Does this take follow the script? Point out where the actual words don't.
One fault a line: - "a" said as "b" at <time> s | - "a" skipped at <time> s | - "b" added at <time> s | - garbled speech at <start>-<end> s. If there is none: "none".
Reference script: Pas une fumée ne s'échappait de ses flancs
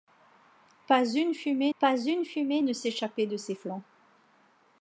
- "pas une fumée" added at 1.8 s